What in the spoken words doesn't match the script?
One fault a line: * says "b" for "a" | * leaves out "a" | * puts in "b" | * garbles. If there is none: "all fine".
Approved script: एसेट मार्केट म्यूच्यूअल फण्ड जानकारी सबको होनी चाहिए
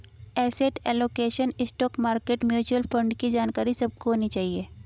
* puts in "एलोकेशन स्टॉक"
* puts in "की"